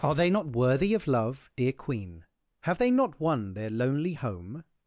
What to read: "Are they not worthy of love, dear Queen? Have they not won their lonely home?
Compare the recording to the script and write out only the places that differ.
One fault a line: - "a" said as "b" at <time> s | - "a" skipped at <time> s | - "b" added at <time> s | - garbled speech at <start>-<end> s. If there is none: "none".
none